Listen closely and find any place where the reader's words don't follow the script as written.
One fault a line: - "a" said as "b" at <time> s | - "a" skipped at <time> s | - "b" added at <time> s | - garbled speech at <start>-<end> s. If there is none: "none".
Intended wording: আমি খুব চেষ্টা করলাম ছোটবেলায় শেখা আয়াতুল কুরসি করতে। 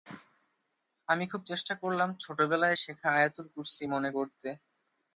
- "মনে" added at 3.9 s